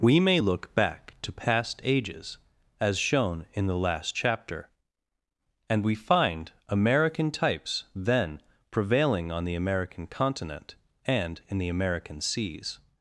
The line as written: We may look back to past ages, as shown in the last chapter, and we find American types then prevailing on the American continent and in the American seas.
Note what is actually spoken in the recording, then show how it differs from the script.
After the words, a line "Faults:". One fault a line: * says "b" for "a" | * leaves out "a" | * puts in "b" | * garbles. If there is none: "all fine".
We may look back to past ages, as shown in the last chapter, and we find American types then prevailing on the American continent and in the American seas.
Faults:
all fine